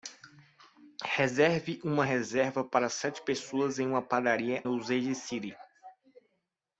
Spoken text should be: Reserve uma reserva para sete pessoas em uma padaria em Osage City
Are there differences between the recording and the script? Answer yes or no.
yes